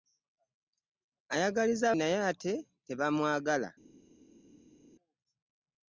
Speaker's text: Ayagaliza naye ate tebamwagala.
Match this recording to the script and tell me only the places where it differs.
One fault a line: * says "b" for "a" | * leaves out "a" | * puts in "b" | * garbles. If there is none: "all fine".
all fine